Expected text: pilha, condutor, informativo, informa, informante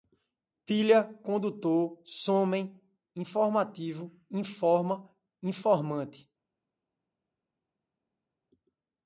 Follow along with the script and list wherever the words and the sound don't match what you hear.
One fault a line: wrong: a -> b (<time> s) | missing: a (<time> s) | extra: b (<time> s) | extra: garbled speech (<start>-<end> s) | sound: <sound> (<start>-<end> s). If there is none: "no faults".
extra: somem (2.0 s)